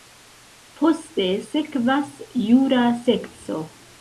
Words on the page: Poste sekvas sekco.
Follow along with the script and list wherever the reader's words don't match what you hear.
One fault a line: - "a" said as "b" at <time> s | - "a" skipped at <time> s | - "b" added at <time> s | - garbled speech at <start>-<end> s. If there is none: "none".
- "jura" added at 2.5 s